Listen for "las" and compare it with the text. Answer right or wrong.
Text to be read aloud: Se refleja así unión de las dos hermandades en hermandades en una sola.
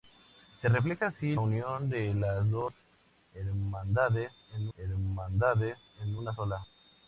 right